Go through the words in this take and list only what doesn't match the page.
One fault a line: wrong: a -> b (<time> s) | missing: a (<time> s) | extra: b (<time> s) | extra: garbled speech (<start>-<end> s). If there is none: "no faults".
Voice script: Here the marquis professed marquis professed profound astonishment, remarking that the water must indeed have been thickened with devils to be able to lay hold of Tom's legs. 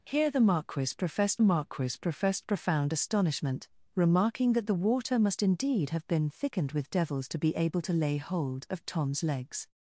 no faults